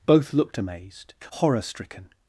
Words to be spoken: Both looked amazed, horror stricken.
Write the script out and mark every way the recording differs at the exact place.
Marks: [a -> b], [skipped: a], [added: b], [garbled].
Both looked amazed, horror stricken.